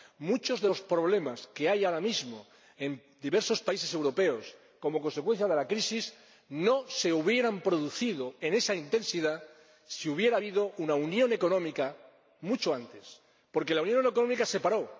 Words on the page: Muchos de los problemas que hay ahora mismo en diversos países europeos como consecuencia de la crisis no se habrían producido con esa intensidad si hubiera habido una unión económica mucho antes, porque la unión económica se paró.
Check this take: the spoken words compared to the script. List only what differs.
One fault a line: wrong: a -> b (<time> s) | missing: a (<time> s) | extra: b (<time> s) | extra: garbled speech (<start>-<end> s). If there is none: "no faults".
no faults